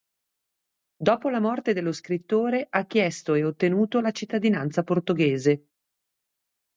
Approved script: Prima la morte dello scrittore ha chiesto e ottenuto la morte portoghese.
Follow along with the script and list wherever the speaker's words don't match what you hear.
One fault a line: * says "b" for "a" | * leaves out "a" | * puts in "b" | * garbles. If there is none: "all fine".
* says "Dopo" for "Prima"
* says "cittadinanza" for "morte"